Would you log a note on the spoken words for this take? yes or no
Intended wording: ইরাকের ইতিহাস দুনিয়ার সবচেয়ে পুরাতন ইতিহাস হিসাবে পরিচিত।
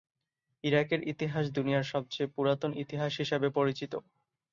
no